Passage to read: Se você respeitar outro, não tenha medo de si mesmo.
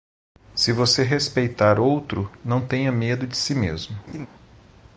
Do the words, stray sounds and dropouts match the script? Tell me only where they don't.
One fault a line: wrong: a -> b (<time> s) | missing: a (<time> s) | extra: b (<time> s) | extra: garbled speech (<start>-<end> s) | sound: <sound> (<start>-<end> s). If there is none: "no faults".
sound: laugh (4.1-4.3 s)